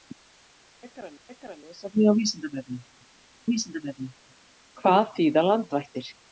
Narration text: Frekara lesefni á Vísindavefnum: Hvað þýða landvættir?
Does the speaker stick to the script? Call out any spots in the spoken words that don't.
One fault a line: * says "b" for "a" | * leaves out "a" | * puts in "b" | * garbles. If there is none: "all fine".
* puts in "frekara"
* puts in "Vísindavefnum"